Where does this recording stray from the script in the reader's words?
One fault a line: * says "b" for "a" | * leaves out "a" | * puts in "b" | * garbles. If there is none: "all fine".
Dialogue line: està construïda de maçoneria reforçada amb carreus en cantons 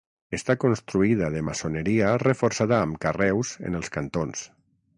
* puts in "els"